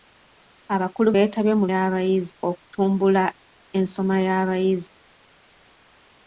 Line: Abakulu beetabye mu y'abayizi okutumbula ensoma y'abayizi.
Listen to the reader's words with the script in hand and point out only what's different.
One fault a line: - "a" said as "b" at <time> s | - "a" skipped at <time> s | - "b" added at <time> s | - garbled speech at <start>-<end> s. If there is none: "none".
none